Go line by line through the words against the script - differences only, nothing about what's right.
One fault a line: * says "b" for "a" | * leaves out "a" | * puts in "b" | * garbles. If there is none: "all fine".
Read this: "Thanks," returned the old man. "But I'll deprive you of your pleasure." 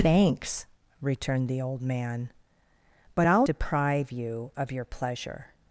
all fine